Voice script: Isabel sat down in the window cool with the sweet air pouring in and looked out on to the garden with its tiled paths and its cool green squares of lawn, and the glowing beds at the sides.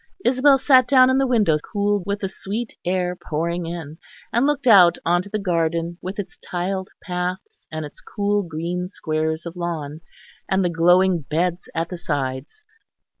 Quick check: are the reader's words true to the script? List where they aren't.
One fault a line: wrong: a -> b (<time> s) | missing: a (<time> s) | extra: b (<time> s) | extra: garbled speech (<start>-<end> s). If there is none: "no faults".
no faults